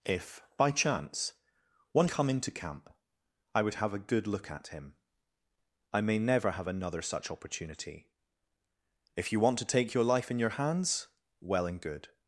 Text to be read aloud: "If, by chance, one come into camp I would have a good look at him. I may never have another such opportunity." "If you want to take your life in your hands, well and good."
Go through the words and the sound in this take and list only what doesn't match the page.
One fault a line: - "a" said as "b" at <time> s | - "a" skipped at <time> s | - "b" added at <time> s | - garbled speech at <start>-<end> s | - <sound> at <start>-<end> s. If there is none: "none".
none